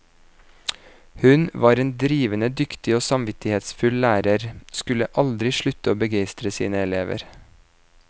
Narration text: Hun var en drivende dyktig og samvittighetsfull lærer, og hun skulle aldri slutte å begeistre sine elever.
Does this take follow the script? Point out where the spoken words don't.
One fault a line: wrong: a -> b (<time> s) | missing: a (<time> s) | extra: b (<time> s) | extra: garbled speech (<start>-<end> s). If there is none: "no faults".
missing: og hun (4.5 s)